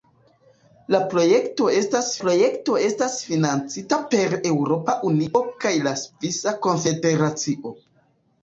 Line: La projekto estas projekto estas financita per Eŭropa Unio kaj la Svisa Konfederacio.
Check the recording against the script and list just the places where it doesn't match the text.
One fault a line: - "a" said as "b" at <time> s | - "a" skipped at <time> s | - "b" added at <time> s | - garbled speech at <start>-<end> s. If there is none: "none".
none